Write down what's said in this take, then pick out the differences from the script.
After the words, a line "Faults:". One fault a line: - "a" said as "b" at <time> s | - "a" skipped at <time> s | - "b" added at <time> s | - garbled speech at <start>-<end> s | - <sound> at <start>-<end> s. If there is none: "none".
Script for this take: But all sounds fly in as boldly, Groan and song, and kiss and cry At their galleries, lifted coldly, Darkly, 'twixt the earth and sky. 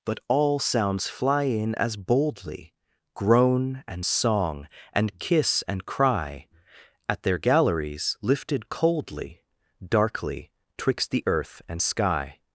But all sounds fly in as boldly, Groan and song, and kiss and cry At their galleries, lifted coldly, Darkly, 'twixt the earth and sky.
Faults:
none